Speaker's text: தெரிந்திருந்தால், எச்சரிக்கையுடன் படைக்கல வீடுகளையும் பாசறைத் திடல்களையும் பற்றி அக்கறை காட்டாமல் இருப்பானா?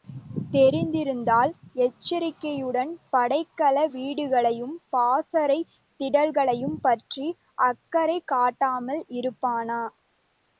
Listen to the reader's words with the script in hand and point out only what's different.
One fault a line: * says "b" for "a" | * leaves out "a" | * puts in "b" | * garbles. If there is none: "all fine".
all fine